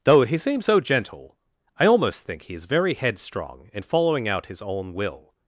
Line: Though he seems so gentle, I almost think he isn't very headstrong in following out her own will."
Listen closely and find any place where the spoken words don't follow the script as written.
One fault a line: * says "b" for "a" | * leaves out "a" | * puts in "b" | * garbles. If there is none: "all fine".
* says "is" for "isn't"
* says "his" for "her"